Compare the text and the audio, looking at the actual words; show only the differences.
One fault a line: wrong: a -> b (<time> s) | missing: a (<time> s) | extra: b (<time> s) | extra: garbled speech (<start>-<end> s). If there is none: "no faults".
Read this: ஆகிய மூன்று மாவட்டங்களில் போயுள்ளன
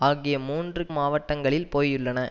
no faults